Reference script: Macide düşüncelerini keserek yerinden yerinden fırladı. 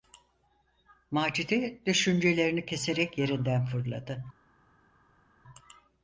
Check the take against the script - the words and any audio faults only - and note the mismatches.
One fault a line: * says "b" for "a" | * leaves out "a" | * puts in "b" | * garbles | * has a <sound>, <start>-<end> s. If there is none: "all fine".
* leaves out "yerinden"